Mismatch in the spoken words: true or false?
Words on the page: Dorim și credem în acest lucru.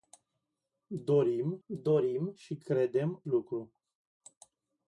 true